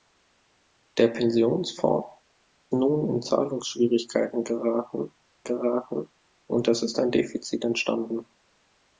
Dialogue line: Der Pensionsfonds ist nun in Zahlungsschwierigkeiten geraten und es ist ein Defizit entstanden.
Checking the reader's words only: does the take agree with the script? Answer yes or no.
no